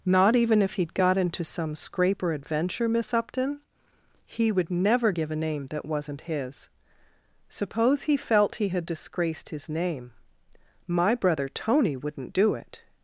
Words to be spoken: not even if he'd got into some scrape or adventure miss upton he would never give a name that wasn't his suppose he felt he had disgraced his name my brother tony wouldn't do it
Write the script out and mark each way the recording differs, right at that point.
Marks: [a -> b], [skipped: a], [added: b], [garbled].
not even if he'd got into some scrape or adventure miss upton he would never give a name that wasn't his suppose he felt he had disgraced his name my brother tony wouldn't do it